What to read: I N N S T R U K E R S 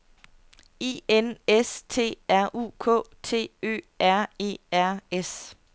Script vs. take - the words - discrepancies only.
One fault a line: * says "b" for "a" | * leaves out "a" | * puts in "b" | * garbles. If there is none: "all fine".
* leaves out "N"
* puts in "T Ø R"